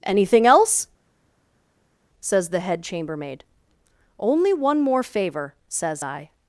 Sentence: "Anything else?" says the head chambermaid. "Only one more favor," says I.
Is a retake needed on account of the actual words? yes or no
no